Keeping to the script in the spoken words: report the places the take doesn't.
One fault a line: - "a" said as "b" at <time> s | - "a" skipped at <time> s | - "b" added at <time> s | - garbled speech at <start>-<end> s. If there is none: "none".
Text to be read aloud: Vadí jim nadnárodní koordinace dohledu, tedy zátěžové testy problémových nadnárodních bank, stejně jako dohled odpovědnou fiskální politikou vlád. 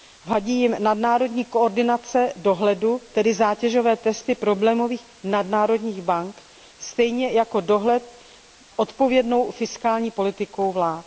none